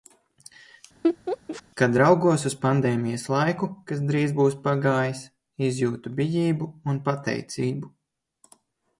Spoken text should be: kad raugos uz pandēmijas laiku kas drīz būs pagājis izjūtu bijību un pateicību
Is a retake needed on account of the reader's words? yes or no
no